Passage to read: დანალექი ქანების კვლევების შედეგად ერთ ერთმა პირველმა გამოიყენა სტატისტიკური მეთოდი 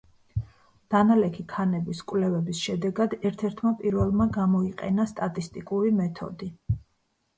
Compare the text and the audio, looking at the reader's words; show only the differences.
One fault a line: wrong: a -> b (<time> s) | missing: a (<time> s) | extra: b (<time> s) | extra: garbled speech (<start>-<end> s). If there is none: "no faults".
no faults